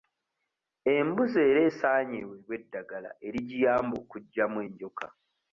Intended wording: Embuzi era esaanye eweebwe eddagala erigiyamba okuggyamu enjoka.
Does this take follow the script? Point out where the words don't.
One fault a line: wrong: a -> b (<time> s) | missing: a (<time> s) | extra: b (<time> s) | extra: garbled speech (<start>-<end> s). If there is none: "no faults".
no faults